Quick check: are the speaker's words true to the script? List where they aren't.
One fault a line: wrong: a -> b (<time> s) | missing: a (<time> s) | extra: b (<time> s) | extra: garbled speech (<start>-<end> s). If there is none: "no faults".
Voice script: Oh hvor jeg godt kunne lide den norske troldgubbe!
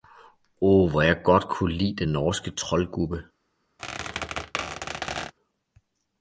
no faults